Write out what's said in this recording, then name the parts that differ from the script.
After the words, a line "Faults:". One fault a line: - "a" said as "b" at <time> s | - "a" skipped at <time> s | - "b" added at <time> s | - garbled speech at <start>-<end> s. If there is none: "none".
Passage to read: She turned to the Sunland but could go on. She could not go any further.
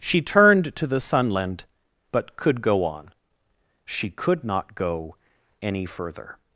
She turned to the Sunland but could go on. She could not go any further.
Faults:
none